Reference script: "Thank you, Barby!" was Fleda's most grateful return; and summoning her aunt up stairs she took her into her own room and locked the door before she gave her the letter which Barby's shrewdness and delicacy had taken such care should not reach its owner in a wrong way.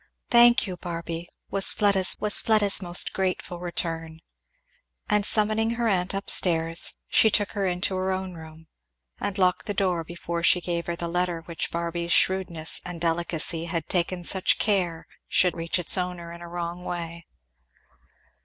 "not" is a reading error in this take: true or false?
true